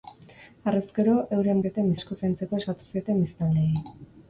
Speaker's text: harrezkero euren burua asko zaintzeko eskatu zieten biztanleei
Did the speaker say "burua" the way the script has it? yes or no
no